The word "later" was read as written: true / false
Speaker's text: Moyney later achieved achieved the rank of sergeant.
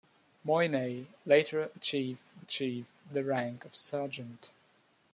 true